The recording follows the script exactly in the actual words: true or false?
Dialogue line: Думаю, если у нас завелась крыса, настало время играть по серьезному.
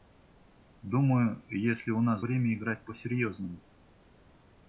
false